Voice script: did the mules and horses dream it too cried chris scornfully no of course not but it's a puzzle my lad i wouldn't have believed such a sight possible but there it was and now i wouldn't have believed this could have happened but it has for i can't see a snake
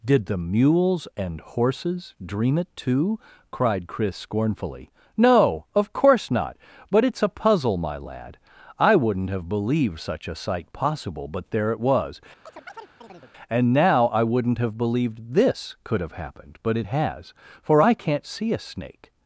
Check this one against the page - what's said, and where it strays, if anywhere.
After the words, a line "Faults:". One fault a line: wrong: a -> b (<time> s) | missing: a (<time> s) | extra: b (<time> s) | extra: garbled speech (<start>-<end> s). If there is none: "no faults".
did the mules and horses dream it too cried chris scornfully no of course not but it's a puzzle my lad i wouldn't have believed such a sight possible but there it was and now i wouldn't have believed this could have happened but it has for i can't see a snake
Faults:
no faults